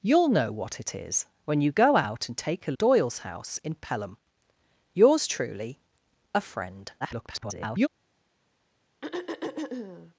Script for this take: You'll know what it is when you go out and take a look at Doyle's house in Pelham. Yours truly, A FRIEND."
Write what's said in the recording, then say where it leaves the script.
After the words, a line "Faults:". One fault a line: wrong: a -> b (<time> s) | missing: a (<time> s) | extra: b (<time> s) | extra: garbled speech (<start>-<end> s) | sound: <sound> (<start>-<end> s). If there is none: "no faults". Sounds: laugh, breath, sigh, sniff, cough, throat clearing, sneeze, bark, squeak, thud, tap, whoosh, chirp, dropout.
You'll know what it is when you go out and take a Doyle's house in Pelham. Yours truly, A FRIEND." [garbled]
Faults:
missing: look at (2.7 s)
extra: garbled speech (7.0-7.9 s)
sound: throat clearing (9.0-10.1 s)